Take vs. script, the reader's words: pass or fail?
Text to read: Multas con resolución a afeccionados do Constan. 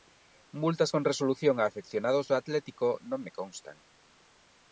fail